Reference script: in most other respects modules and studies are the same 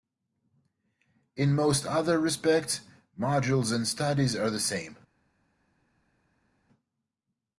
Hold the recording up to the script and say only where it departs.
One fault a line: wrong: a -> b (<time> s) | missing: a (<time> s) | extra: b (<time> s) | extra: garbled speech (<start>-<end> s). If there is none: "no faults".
no faults